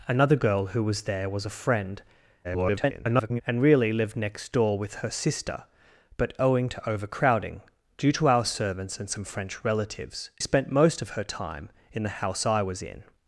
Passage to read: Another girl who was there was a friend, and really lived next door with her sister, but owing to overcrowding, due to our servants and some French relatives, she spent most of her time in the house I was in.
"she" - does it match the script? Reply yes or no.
no